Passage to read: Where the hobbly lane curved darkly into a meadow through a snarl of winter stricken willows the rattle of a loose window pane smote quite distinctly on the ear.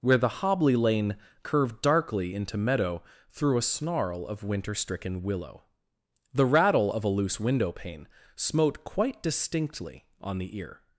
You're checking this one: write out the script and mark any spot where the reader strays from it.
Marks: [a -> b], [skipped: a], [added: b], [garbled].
Where the hobbly lane curved darkly into [skipped: a] meadow through a snarl of winter stricken [willows -> willow] the rattle of a loose window pane smote quite distinctly on the ear.